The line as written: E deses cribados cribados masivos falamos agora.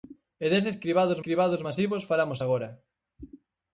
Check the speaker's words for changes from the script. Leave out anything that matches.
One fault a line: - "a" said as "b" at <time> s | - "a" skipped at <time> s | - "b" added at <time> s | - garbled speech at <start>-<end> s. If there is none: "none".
none